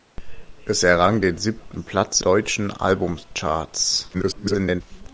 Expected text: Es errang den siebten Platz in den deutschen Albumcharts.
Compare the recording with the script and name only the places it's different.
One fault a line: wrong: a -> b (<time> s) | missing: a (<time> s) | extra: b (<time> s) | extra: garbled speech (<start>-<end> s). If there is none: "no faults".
missing: in den (2.2 s)
extra: garbled speech (4.1-4.8 s)